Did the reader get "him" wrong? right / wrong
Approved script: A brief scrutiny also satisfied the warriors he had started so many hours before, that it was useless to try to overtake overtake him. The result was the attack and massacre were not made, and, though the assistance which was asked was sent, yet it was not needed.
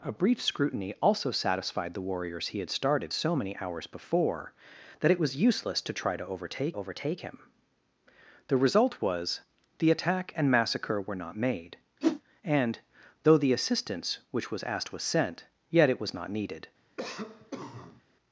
right